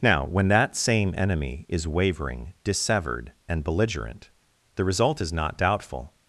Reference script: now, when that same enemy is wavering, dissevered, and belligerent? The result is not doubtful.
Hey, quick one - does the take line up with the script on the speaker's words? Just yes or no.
yes